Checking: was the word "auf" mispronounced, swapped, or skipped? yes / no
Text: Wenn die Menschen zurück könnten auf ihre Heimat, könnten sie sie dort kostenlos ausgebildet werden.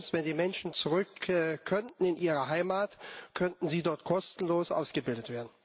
yes